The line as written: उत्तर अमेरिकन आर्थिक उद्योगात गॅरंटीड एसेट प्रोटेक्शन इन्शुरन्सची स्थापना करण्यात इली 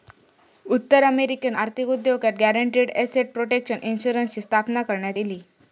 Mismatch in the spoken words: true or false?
false